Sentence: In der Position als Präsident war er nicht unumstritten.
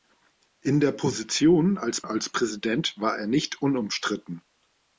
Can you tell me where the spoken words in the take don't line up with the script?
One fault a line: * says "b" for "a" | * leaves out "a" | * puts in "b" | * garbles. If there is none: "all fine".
* puts in "als"